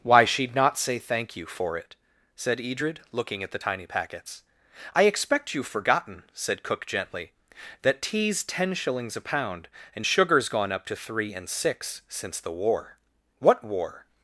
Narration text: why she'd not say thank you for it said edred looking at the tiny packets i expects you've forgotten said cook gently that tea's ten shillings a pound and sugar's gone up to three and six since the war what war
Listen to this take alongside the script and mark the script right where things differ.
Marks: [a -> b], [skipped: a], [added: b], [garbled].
why she'd not say thank you for it said edred looking at the tiny packets i [expects -> expect] you've forgotten said cook gently that tea's ten shillings a pound and sugar's gone up to three and six since the war what war